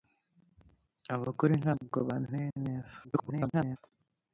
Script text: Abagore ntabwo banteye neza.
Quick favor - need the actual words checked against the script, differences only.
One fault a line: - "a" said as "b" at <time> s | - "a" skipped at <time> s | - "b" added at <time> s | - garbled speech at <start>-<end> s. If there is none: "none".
- garbled speech at 3.0-3.8 s